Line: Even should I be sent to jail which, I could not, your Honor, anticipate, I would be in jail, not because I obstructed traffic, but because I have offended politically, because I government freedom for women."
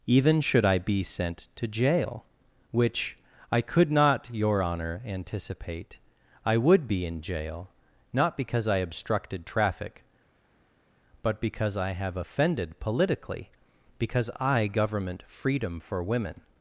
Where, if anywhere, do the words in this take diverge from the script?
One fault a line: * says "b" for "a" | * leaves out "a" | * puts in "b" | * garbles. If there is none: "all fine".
all fine